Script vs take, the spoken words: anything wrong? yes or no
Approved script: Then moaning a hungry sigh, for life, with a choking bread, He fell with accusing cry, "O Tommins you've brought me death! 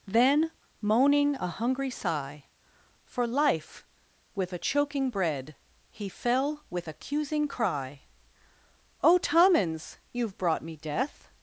no